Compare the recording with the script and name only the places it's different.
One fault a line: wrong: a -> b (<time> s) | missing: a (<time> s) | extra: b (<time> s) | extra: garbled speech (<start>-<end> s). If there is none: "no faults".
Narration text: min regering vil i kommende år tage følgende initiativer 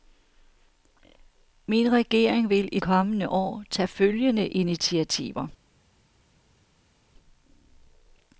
no faults